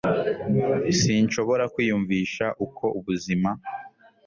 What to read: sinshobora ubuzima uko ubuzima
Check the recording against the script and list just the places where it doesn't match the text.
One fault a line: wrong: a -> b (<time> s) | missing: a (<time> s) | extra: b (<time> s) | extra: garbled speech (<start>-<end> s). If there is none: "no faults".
wrong: ubuzima -> kwiyumvisha (1.7 s)